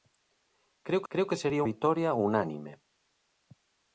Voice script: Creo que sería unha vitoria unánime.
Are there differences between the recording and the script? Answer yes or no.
yes